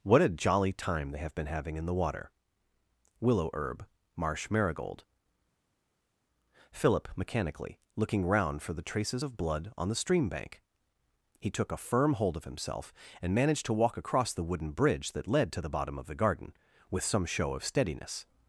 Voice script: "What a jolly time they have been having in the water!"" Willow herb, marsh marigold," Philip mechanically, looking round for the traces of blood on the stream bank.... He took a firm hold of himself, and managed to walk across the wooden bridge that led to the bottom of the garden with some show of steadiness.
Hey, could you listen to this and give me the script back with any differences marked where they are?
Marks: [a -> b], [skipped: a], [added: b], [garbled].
"What a jolly time they have been having in the water!"" Willow herb, marsh marigold," Philip mechanically, looking round for the traces of blood on the stream bank.... He took a firm hold of himself, and managed to walk across the wooden bridge that led to the bottom of the garden with some show of steadiness.